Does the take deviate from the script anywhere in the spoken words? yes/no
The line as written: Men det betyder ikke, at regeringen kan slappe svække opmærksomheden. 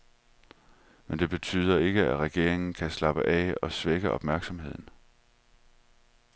yes